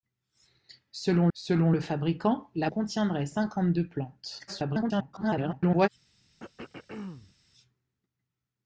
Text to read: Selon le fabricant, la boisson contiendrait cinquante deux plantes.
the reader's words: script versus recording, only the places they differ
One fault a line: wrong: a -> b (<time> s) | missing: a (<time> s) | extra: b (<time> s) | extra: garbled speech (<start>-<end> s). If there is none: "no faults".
extra: selon (1.3 s)
missing: boisson (2.7 s)
extra: garbled speech (4.5-5.9 s)